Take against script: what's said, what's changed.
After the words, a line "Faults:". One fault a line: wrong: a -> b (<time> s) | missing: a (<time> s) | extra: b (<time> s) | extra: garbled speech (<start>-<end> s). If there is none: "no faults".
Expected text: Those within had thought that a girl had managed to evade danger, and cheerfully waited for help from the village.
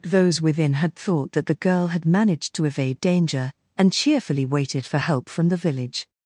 Those within had thought that the girl had managed to evade danger, and cheerfully waited for help from the village.
Faults:
wrong: a -> the (1.4 s)